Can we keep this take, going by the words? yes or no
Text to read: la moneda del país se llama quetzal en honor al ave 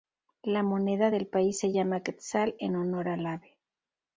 yes